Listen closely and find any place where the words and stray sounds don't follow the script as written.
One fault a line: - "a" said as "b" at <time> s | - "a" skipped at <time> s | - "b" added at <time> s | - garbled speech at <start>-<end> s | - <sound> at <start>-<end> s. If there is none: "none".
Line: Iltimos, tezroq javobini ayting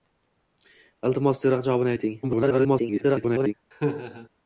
- garbled speech at 2.2-3.5 s
- laugh at 3.7-4.3 s